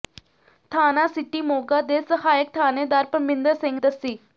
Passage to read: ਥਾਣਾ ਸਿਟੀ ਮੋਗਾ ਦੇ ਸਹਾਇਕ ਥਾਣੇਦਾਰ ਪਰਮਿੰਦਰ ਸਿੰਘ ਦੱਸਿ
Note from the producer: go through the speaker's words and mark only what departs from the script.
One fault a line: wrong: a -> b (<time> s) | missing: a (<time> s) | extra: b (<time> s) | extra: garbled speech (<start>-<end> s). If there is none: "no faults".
no faults